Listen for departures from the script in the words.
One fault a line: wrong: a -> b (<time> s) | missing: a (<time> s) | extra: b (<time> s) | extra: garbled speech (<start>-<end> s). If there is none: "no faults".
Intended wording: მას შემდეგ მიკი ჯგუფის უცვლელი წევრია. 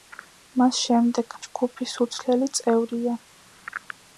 missing: მიკი (1.4 s)